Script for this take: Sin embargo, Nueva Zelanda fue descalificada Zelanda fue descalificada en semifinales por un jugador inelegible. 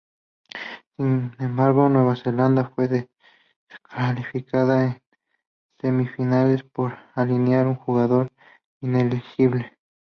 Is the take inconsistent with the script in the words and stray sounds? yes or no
yes